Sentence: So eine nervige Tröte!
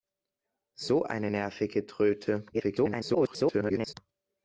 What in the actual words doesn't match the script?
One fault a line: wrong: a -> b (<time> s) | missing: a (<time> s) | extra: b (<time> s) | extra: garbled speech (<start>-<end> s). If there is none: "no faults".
extra: garbled speech (2.5-3.9 s)